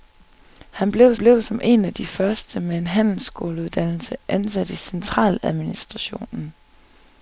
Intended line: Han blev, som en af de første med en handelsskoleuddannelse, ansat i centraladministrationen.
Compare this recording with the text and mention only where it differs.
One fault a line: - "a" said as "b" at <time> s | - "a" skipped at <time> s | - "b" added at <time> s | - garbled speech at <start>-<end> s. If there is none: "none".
- "blev" added at 1.2 s